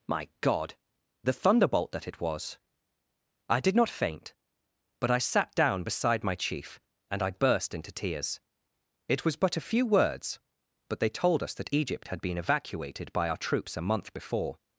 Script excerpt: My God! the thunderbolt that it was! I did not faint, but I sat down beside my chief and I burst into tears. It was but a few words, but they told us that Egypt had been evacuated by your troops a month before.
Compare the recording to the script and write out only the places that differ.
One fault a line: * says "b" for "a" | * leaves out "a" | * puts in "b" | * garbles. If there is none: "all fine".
* says "our" for "your"